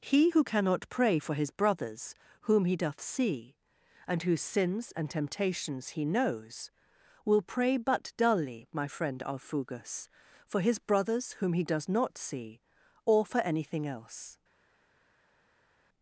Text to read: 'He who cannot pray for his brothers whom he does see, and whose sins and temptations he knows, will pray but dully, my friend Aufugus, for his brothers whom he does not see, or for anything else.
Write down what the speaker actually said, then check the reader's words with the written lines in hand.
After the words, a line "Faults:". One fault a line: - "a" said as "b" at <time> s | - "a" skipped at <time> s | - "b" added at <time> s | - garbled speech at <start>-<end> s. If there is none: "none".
'He who cannot pray for his brothers whom he doth see, and whose sins and temptations he knows, will pray but dully, my friend Aufugus, for his brothers whom he does not see, or for anything else.
Faults:
- "does" said as "doth" at 2.8 s